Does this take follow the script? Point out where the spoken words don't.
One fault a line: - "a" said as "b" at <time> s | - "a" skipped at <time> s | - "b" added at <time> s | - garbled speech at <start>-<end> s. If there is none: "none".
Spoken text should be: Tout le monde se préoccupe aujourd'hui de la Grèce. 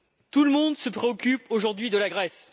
none